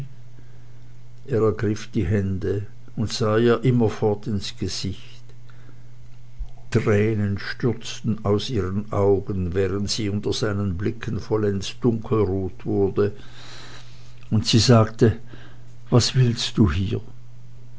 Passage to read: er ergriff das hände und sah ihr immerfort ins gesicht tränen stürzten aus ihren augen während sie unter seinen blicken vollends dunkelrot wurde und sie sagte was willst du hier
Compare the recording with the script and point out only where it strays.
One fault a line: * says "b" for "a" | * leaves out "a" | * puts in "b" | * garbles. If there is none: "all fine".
* says "die" for "das"